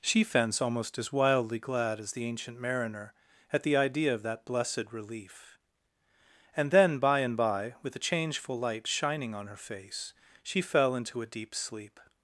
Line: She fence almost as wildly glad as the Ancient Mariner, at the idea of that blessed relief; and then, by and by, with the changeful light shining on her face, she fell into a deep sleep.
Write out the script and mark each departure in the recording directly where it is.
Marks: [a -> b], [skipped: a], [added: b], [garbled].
She fence almost as wildly glad as the Ancient Mariner, at the idea of that blessed relief; and then, by and by, with the changeful light shining on her face, she fell into a deep sleep.